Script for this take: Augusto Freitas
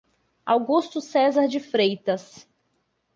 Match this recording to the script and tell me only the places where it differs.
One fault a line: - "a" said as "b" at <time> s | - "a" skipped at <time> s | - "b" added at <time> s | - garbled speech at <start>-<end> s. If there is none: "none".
- "Cesar de" added at 1.0 s